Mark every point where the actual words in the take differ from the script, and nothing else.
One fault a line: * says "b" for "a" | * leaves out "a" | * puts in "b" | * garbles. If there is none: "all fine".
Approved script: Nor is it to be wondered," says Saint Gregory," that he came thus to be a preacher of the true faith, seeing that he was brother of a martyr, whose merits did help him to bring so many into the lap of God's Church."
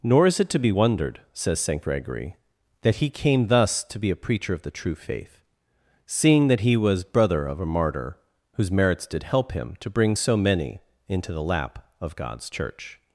all fine